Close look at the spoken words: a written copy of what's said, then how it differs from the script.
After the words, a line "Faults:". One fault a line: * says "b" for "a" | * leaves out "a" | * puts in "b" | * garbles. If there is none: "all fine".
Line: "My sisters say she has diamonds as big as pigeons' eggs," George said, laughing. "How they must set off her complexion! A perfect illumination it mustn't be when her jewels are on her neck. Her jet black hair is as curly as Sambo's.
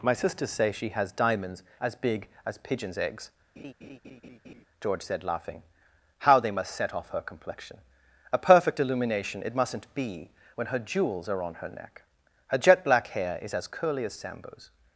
"My sisters say she has diamonds as big as pigeons' eggs," George said, laughing. "How they must set off her complexion! A perfect illumination it mustn't be when her jewels are on her neck. Her jet black hair is as curly as Sambo's.
Faults:
all fine